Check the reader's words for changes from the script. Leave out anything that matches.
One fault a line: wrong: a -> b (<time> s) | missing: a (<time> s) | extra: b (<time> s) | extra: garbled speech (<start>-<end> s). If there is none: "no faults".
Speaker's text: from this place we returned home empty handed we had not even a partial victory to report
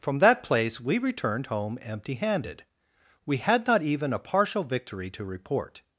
wrong: this -> that (0.2 s)